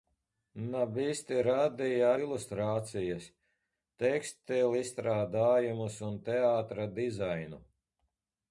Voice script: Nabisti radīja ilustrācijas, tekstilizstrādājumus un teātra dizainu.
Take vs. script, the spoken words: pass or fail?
pass